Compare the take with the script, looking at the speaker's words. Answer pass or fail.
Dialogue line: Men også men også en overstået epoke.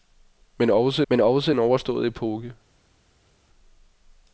pass